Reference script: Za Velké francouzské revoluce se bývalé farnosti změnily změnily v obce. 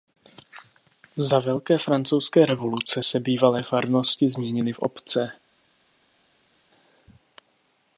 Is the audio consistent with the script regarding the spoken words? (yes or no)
no